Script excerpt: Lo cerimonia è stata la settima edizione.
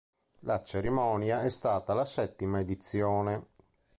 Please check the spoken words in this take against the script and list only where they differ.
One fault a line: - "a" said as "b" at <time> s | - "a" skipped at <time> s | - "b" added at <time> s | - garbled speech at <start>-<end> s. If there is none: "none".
- "Lo" said as "La" at 0.4 s